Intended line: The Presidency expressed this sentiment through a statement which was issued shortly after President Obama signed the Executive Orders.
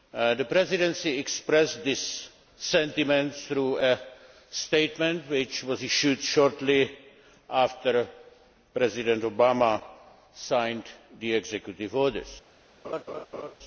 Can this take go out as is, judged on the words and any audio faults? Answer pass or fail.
fail